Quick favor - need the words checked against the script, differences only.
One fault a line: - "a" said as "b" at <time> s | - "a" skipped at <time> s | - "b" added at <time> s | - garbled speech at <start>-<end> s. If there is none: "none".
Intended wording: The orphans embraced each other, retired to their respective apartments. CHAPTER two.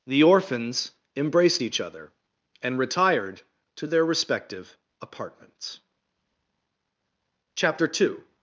- "and" added at 2.6 s